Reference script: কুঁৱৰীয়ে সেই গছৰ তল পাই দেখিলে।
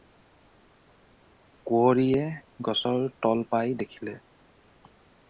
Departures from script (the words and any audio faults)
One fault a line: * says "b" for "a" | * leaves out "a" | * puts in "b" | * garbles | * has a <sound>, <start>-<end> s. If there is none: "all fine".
* leaves out "সেই"